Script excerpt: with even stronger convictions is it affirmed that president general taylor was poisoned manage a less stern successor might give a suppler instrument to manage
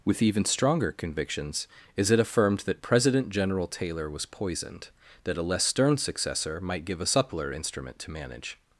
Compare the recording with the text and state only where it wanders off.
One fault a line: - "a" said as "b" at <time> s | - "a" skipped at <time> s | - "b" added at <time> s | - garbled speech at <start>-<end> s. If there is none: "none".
- "manage" said as "that" at 5.2 s